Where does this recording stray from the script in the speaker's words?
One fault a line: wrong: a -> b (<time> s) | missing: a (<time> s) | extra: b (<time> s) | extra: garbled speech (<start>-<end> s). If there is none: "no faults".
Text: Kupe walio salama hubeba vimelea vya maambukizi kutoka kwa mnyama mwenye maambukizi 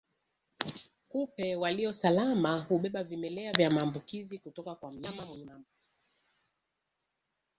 no faults